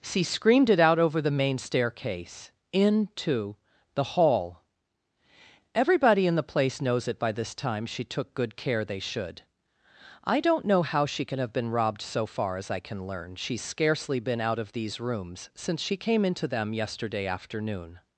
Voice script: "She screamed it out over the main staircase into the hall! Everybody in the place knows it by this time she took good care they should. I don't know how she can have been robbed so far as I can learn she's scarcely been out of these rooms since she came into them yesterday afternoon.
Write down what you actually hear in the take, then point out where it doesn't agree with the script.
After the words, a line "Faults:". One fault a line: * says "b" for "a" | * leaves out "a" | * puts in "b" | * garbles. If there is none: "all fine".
"She screamed it out over the main staircase into the hall! Everybody in the place knows it by this time she took good care they should. I don't know how she can have been robbed so far as I can learn she's scarcely been out of these rooms since she came into them yesterday afternoon.
Faults:
all fine